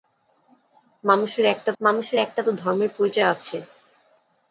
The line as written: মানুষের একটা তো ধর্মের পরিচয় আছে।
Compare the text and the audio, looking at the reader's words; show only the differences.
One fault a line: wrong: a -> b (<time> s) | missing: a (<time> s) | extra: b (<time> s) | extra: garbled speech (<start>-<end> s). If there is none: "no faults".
extra: মানুষের একটা (1.8 s)